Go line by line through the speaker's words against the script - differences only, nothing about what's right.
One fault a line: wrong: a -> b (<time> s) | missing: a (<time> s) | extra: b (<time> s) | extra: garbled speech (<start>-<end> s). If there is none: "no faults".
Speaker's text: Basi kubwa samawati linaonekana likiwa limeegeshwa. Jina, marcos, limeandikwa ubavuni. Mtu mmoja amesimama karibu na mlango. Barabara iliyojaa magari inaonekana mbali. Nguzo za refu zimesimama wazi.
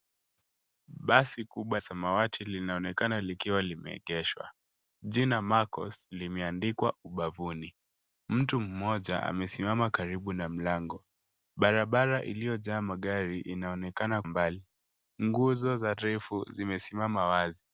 no faults